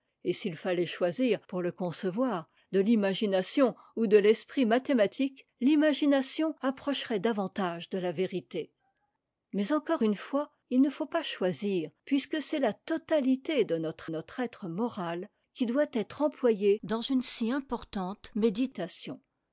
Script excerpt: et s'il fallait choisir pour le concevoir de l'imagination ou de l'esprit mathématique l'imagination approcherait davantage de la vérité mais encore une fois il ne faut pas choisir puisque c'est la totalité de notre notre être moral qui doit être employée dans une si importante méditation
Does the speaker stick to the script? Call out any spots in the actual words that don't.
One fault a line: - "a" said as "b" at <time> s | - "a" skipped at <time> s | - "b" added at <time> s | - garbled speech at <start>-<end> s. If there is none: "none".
none